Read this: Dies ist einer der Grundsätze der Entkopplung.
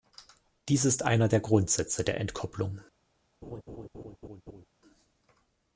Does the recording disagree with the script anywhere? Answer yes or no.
no